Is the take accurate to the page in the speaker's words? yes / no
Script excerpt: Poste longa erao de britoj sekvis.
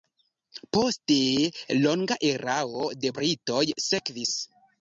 yes